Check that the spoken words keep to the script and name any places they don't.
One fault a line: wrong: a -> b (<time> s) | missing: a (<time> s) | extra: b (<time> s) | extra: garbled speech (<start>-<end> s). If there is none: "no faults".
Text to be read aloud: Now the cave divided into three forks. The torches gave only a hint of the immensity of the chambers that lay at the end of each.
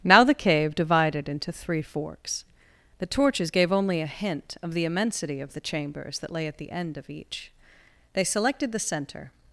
extra: They selected the center (8.1 s)